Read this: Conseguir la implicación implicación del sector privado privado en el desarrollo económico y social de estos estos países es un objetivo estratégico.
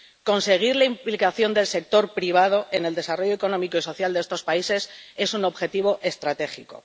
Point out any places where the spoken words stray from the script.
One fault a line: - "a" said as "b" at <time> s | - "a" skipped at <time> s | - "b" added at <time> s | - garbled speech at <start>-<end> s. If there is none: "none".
- "implicación" skipped at 1.5 s
- "privado" skipped at 2.7 s
- "estos" skipped at 4.4 s